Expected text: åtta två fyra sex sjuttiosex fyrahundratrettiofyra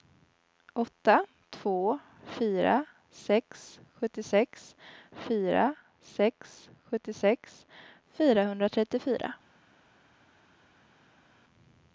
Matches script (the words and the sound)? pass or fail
fail